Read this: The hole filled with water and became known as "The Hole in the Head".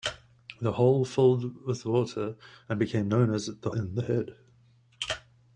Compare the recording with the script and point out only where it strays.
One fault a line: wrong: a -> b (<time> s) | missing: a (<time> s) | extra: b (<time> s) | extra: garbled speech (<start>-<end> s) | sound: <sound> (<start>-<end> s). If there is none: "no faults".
missing: Hole (3.7 s)